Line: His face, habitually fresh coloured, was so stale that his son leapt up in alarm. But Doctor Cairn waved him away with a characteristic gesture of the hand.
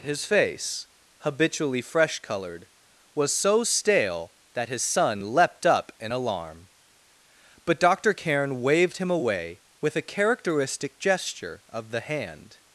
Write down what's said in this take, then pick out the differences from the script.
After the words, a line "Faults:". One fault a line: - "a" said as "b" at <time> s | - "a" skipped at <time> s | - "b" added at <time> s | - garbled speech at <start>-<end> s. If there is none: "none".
His face, habitually fresh coloured, was so stale that his son leapt up in alarm. But Doctor Cairn waved him away with a characteristic gesture of the hand.
Faults:
none